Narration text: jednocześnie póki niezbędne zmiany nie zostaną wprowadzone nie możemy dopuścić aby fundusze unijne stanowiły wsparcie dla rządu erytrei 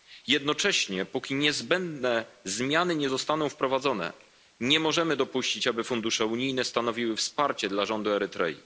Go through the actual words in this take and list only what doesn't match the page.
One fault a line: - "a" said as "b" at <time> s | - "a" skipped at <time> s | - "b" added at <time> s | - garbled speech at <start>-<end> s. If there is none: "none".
none